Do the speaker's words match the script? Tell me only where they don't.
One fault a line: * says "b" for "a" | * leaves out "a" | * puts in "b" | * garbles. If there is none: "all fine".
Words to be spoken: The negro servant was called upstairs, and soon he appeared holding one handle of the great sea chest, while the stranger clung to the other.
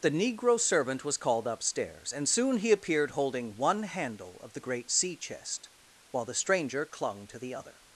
all fine